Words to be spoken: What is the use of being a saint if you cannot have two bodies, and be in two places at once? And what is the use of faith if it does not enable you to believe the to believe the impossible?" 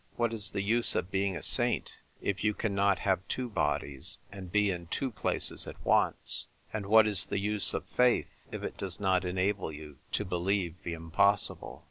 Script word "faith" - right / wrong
right